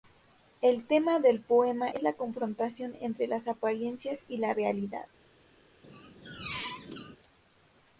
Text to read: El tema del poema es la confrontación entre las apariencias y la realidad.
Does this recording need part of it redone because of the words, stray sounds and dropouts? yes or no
yes